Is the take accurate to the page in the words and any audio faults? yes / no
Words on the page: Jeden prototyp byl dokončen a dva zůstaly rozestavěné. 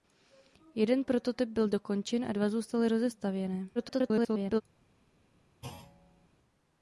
no